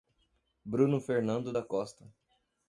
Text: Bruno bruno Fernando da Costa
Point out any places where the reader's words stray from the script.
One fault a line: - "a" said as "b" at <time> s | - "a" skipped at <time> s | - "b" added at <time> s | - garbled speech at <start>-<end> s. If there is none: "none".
- "bruno" skipped at 1.0 s